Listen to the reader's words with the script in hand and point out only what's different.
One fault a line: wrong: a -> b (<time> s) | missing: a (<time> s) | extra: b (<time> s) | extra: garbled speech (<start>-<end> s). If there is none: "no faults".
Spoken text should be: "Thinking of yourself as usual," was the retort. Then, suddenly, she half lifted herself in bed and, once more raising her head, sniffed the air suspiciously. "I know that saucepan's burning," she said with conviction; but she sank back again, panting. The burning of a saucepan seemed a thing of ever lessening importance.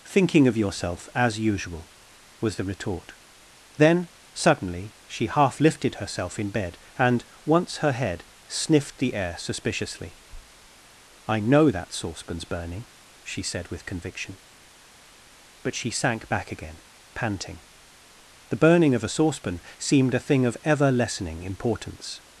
missing: more raising (7.8 s)